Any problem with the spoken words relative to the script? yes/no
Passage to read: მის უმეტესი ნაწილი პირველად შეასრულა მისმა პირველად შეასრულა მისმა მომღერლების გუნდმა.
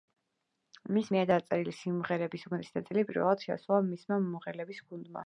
yes